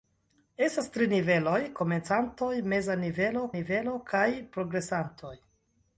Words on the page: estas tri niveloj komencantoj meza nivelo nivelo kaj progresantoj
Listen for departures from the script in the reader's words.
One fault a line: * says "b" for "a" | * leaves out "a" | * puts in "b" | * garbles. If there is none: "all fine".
all fine